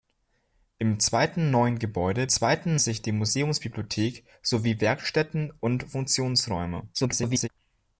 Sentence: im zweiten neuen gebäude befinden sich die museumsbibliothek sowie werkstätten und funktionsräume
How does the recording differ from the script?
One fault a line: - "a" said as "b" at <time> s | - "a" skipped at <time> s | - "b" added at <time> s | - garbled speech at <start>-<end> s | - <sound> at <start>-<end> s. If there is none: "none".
- "befinden" said as "zweiten" at 2.3 s
- garbled speech at 6.9-7.5 s